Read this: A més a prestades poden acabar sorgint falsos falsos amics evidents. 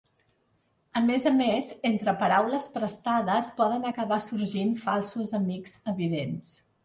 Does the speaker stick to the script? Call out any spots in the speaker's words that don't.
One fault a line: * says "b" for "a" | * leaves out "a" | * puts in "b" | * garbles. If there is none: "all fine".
* puts in "més entre paraules"
* leaves out "falsos"